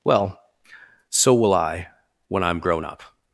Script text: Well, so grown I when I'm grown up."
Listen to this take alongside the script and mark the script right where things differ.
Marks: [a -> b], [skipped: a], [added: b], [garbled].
Well, so [grown -> will] I when I'm grown up."